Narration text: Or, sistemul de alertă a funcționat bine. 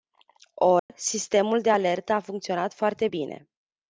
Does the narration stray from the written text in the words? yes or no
yes